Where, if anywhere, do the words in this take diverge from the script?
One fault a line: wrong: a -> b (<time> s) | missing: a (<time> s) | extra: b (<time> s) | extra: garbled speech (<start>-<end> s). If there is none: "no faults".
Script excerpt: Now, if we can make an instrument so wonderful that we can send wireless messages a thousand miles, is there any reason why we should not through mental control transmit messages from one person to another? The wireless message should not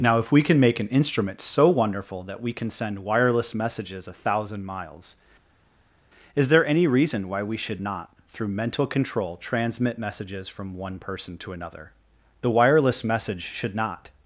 no faults